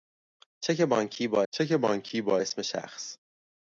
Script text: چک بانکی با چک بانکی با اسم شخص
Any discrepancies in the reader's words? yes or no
no